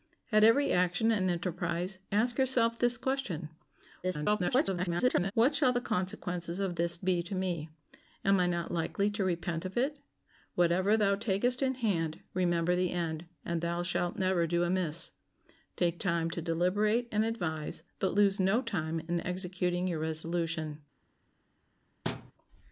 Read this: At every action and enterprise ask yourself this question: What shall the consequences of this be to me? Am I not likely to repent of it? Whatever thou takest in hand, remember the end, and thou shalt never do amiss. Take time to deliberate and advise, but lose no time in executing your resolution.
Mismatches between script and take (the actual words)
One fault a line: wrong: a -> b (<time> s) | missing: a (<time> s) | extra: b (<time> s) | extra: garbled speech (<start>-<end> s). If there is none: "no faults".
extra: garbled speech (4.0-5.3 s)